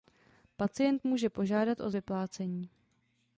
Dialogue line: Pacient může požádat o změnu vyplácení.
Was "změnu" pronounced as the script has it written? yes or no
no